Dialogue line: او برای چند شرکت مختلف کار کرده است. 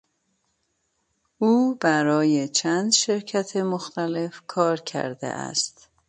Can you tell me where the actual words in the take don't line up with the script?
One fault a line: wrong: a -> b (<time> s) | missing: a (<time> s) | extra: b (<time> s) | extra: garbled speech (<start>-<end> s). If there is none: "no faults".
no faults